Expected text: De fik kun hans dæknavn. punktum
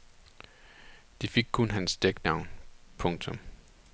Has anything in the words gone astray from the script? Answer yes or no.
no